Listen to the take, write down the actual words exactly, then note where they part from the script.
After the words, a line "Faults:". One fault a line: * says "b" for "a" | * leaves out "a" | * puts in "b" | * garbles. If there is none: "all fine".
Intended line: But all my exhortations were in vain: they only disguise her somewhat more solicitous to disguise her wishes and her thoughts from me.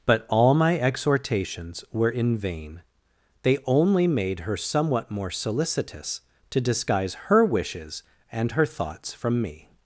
But all my exhortations were in vain: they only made her somewhat more solicitous to disguise her wishes and her thoughts from me.
Faults:
* says "made" for "disguise"